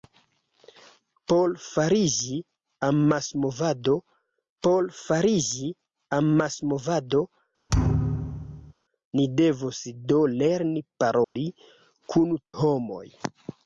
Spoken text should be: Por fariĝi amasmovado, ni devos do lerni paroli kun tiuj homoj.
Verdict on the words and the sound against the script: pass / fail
fail